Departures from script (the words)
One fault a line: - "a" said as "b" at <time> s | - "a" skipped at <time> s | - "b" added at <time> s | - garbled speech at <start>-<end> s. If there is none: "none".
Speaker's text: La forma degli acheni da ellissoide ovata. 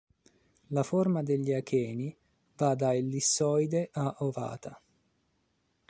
- "va" added at 2.5 s
- "a" added at 3.9 s